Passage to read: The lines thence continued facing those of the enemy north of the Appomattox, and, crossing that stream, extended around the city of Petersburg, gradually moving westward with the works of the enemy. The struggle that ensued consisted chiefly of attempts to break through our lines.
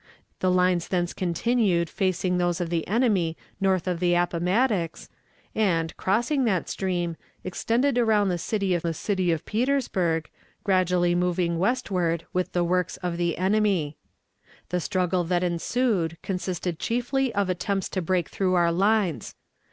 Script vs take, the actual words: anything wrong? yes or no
yes